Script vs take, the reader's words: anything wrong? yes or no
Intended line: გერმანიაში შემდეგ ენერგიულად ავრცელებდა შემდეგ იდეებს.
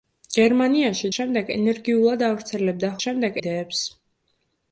no